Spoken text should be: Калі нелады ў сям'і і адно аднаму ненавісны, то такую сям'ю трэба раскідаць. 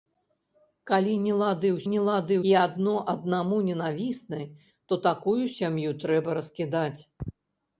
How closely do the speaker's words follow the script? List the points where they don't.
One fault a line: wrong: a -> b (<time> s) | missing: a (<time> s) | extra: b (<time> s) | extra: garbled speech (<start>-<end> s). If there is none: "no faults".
wrong: сям'і -> нелады (1.9 s)